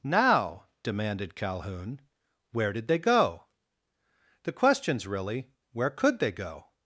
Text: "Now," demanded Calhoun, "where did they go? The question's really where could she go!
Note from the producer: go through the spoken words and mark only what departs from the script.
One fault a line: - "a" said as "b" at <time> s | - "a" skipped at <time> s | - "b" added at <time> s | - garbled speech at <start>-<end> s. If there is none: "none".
- "she" said as "they" at 6.2 s